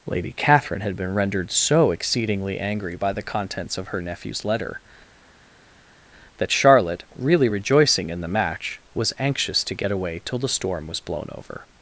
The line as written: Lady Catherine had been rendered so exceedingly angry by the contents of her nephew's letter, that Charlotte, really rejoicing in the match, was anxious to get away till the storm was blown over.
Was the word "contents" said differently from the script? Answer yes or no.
no